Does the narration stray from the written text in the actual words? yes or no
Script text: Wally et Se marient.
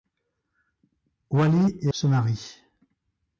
no